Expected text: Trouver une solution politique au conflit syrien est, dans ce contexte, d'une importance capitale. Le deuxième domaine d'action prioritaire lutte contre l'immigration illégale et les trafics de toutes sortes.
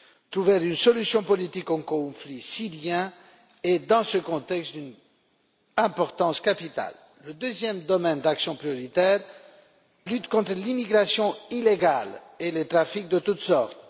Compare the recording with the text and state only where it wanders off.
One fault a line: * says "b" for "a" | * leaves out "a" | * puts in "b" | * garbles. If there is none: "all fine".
all fine